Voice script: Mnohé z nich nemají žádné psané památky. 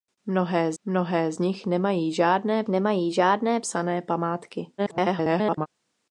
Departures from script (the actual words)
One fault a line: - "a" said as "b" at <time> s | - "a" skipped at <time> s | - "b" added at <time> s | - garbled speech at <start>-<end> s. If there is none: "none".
- "mnohé" added at 0.8 s
- "nemají žádné" added at 2.7 s
- garbled speech at 4.8-5.7 s